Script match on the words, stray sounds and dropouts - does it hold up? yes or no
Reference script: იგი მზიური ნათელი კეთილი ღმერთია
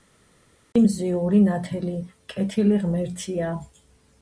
yes